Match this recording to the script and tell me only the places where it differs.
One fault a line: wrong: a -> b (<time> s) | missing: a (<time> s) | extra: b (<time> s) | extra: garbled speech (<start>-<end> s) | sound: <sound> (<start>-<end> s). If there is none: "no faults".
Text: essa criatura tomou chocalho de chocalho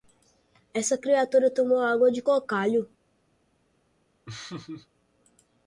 wrong: chocalho -> água (1.8 s)
sound: laugh (4.3-4.9 s)